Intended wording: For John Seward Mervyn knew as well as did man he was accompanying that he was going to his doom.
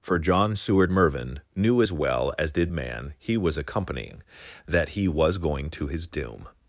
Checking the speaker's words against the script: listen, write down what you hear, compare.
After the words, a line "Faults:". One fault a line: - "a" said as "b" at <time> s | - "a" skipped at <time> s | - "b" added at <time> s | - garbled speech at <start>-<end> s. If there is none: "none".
For John Seward Mervyn knew as well as did man he was accompanying that he was going to his doom.
Faults:
none